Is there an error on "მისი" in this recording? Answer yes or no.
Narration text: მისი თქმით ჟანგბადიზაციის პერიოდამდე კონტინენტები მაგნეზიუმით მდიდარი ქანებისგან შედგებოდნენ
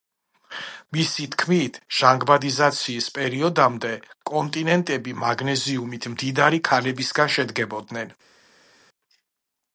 no